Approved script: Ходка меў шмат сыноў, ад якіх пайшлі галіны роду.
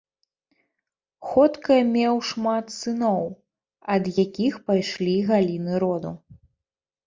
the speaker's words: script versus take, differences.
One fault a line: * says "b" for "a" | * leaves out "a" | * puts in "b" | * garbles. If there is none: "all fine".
all fine